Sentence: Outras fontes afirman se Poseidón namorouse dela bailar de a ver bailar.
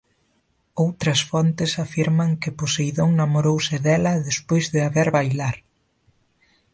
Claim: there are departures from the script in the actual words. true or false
true